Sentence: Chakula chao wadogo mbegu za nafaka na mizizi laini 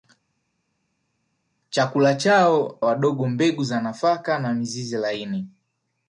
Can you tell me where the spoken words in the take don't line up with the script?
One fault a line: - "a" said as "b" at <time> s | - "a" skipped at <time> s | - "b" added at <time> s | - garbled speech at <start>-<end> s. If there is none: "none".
none